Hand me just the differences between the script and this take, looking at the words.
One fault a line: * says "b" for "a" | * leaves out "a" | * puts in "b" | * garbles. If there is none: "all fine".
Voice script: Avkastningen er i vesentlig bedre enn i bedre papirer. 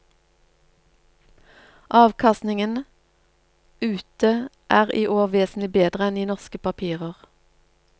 * puts in "ute"
* puts in "år"
* says "norske" for "bedre"